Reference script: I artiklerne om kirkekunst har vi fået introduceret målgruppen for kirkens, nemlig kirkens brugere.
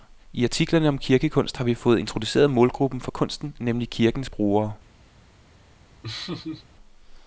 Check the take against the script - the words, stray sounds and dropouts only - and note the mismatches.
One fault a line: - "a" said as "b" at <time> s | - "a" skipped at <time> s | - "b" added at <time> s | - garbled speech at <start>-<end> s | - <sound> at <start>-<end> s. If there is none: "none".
- "kirkens" said as "kunsten" at 3.1 s
- laugh at 6.0-6.7 s